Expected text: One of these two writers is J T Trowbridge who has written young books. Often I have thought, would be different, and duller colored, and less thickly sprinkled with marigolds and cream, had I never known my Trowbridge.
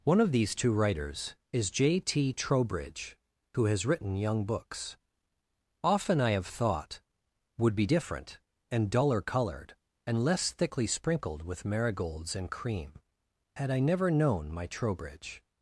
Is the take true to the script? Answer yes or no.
yes